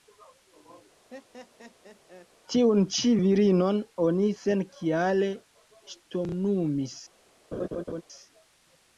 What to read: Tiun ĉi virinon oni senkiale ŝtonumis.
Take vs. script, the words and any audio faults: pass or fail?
fail